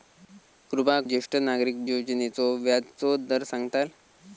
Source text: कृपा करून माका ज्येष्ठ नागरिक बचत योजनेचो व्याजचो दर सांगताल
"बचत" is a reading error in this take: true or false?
true